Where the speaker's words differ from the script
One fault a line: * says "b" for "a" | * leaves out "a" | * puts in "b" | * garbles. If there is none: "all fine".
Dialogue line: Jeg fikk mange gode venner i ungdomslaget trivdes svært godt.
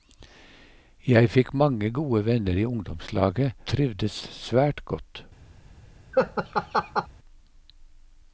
all fine